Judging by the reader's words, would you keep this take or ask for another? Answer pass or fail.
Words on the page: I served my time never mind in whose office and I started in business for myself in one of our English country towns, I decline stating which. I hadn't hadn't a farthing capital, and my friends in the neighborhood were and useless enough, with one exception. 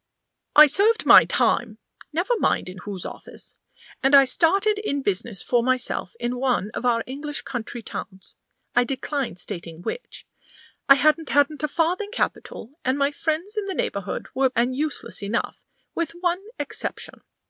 pass